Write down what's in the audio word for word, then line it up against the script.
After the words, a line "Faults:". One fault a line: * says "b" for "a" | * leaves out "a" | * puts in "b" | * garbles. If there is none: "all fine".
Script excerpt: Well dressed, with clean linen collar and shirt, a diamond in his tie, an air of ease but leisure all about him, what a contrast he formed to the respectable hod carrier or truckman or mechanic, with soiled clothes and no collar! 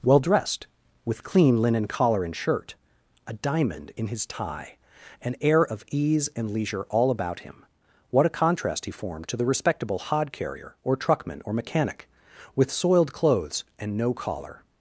Well dressed, with clean linen collar and shirt, a diamond in his tie, an air of ease and leisure all about him, what a contrast he formed to the respectable hod carrier or truckman or mechanic, with soiled clothes and no collar!
Faults:
* says "and" for "but"